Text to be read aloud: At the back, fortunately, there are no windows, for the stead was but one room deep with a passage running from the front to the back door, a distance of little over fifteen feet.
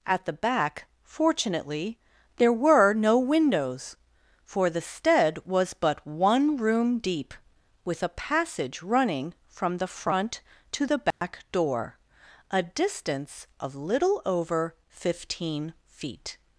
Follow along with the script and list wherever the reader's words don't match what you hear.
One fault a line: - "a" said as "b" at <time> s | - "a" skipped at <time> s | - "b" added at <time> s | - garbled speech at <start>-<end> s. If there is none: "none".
- "are" said as "were" at 2.5 s